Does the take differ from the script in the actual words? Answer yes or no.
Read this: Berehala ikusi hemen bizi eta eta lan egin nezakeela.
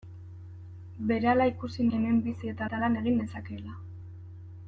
no